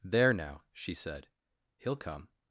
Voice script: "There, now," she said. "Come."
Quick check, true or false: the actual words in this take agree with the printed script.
false